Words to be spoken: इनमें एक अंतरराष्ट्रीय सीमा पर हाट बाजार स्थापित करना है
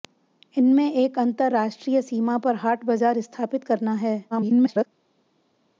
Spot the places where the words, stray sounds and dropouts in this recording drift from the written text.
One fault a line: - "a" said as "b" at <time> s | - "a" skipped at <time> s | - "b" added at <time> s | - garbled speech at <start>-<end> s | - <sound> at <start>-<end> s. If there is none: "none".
- garbled speech at 4.3-4.9 s